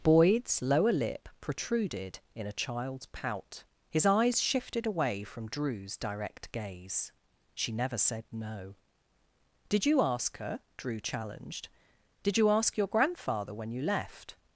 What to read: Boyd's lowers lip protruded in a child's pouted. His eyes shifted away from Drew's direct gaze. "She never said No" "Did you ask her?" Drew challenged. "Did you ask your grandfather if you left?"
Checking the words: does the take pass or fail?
fail